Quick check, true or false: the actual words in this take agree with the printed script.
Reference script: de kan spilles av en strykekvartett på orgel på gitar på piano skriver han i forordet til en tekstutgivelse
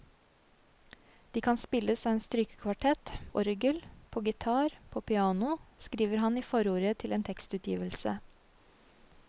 false